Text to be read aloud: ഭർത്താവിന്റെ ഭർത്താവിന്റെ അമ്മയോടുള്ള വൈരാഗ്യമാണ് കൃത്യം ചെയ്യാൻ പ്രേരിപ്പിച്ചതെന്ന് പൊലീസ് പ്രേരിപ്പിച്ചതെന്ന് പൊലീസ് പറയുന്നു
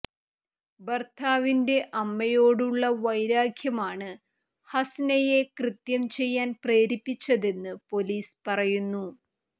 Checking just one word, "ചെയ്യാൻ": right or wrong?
right